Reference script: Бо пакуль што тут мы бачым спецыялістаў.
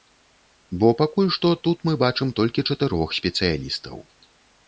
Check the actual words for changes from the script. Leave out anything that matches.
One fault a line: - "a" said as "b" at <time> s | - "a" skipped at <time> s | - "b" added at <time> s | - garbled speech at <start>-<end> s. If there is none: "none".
- "толькі чатырох" added at 2.4 s